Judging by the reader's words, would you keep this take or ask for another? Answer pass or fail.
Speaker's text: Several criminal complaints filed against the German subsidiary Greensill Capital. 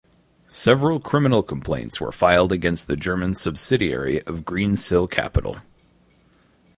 fail